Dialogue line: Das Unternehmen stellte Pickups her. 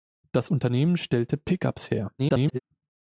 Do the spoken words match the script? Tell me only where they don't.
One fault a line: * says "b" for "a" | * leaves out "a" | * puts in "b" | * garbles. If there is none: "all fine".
* garbles